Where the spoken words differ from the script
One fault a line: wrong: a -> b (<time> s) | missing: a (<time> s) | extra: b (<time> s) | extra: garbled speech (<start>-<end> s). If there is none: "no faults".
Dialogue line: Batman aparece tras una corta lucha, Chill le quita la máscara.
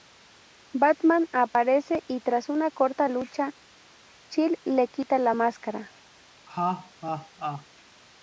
extra: y (2.1 s)